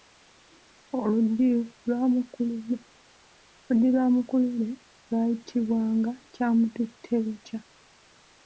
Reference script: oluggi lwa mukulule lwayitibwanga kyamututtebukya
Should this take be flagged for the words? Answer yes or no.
no